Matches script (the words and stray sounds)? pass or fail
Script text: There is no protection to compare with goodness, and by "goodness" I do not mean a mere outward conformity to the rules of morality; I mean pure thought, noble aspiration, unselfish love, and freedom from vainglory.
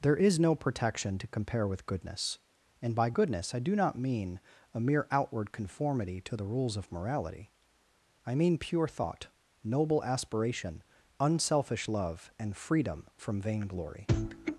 pass